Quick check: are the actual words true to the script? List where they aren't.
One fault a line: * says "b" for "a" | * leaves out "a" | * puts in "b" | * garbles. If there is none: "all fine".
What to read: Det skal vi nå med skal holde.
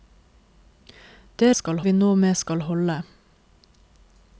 all fine